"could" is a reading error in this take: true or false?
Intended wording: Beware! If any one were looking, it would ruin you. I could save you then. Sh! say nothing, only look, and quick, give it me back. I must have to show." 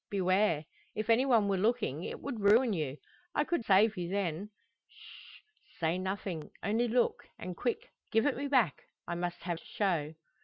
false